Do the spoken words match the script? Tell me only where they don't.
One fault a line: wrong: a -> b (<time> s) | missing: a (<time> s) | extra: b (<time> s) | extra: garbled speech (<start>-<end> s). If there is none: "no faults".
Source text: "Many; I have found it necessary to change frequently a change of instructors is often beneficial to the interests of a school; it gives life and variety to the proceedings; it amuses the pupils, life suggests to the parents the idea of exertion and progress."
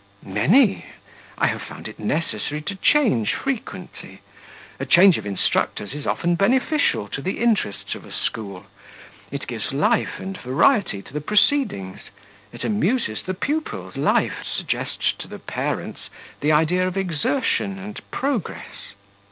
no faults